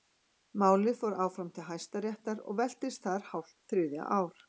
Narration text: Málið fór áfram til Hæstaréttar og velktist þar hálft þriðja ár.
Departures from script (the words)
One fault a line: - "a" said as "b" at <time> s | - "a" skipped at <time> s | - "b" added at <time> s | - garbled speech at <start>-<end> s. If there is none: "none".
none